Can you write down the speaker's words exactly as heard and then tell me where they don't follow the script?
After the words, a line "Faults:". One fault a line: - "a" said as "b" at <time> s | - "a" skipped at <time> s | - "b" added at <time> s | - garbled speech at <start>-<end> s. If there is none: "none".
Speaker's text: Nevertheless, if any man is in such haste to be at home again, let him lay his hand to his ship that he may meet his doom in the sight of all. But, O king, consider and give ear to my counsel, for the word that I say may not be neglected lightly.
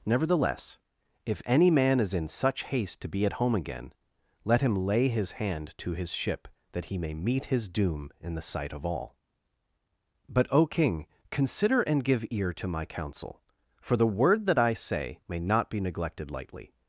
Nevertheless, if any man is in such haste to be at home again, let him lay his hand to his ship that he may meet his doom in the sight of all. But, O king, consider and give ear to my counsel, for the word that I say may not be neglected lightly.
Faults:
none